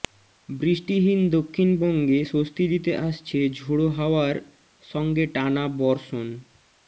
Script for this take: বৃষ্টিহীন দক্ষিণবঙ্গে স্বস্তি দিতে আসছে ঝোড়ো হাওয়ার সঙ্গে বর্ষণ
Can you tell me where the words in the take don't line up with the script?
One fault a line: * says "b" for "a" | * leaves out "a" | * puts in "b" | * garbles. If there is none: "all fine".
* puts in "টানা"